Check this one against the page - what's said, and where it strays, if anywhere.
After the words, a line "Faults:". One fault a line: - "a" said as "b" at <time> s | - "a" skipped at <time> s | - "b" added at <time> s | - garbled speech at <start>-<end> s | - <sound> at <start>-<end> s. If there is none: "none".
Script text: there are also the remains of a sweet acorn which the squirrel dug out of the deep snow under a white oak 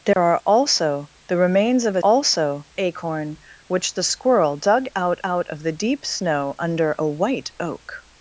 there are also the remains of a also acorn which the squirrel dug out out of the deep snow under a white oak
Faults:
- dropout at 0.1-0.2 s
- "sweet" said as "also" at 2.0 s
- "out" added at 5.2 s